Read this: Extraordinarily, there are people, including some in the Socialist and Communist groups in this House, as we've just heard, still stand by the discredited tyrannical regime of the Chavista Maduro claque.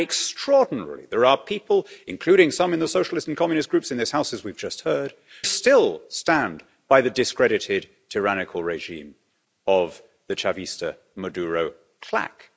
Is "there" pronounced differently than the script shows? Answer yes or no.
no